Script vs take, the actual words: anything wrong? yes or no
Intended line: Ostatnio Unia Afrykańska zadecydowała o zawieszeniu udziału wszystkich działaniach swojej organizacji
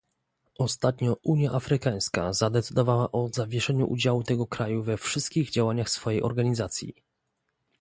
yes